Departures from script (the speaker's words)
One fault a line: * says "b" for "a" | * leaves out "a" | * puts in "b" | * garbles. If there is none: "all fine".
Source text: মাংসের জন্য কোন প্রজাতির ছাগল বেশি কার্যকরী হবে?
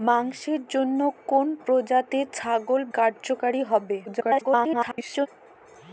* leaves out "বেশি"
* garbles